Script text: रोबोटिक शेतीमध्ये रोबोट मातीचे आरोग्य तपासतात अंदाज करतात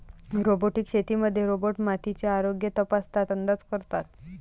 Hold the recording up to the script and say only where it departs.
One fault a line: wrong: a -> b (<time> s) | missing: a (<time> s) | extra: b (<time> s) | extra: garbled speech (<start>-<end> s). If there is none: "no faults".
no faults